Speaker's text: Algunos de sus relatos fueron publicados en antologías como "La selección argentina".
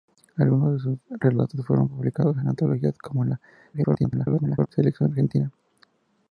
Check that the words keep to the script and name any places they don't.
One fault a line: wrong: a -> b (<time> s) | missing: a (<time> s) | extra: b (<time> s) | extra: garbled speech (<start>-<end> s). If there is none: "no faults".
extra: garbled speech (3.7-4.7 s)